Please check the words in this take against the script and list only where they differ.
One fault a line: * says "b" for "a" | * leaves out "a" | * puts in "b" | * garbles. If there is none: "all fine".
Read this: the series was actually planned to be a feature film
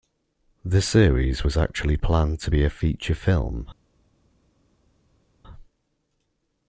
all fine